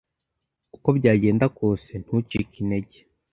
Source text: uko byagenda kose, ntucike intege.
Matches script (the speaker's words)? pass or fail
pass